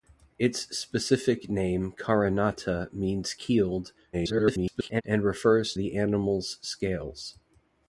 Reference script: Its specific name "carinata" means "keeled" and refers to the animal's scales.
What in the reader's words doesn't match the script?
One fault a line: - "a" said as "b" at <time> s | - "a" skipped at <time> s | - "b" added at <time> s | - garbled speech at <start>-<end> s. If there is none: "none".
- garbled speech at 4.1-5.0 s
- "to" skipped at 5.7 s